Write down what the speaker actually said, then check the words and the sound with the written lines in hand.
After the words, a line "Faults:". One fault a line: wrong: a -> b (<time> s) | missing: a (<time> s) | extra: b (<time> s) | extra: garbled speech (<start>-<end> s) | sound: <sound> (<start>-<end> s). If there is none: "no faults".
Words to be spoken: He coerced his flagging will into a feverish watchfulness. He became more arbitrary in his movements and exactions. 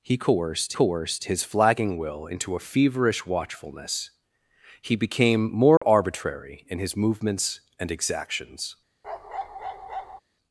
He coerced coerced his flagging will into a feverish watchfulness. He became more arbitrary in his movements and exactions.
Faults:
extra: coerced (0.7 s)
sound: dropout (5.8-5.8 s)
sound: bark (9.0-10.2 s)